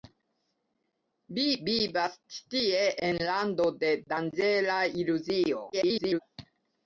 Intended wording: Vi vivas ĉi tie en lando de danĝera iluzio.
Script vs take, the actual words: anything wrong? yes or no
yes